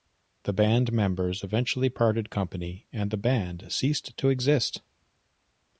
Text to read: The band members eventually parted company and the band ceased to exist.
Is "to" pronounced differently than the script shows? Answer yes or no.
no